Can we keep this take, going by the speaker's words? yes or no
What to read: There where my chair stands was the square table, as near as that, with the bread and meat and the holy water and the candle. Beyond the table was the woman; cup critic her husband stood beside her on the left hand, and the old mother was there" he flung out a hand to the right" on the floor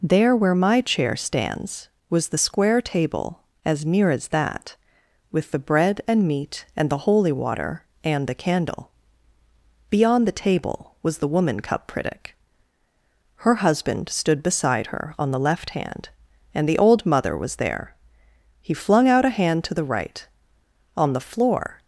yes